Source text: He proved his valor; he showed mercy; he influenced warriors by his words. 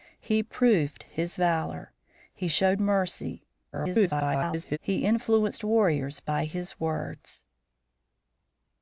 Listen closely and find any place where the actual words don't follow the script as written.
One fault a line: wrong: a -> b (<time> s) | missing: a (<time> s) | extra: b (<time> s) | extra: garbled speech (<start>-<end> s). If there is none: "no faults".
extra: garbled speech (3.7-4.8 s)